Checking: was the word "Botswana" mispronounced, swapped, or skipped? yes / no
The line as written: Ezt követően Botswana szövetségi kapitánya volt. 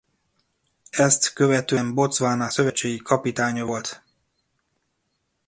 no